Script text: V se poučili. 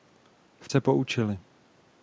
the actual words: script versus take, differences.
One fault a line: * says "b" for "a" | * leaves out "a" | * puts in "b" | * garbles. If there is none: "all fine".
all fine